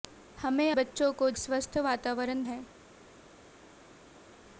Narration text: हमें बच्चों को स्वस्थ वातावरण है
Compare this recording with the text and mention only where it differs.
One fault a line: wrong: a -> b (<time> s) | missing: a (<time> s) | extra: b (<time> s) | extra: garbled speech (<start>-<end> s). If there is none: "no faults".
no faults